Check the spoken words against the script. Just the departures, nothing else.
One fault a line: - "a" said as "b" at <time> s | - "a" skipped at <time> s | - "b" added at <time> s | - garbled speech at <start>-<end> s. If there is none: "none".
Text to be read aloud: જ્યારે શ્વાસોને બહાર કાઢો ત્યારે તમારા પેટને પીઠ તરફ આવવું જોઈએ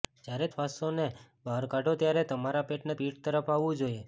none